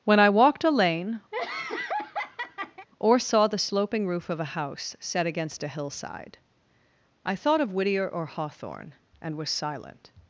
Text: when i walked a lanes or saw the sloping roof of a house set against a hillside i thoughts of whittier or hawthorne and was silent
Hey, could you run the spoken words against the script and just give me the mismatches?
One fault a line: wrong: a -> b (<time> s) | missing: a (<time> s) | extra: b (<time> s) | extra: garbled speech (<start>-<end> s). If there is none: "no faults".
wrong: lanes -> lane (0.7 s)
wrong: thoughts -> thought (7.3 s)